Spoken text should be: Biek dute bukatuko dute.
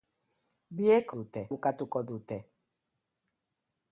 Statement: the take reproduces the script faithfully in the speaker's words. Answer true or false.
true